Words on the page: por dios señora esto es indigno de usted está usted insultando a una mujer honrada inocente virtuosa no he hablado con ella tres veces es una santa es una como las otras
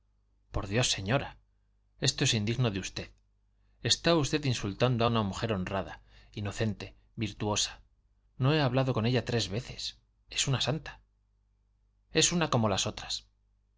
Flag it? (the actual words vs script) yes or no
no